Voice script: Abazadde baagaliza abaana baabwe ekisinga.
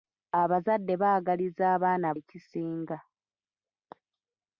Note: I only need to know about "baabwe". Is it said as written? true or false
false